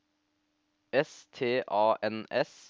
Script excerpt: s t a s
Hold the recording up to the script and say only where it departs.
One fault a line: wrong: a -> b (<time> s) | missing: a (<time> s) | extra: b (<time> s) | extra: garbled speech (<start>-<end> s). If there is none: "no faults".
extra: n (2.0 s)